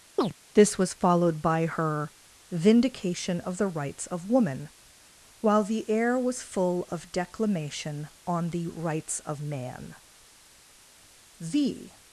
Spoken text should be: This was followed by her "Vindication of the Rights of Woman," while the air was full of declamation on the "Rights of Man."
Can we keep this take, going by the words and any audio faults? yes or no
no